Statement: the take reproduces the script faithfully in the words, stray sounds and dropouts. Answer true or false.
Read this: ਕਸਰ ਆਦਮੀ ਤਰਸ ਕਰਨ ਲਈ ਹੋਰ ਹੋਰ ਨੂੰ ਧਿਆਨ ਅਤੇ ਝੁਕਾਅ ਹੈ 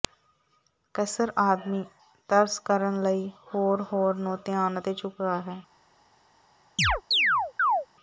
false